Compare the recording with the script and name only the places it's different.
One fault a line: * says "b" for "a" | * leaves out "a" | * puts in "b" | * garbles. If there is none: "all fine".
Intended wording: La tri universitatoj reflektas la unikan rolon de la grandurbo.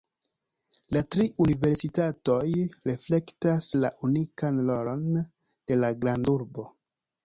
all fine